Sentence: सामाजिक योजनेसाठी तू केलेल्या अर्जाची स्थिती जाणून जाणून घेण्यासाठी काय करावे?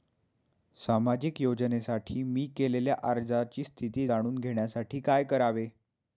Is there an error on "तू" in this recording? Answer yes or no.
yes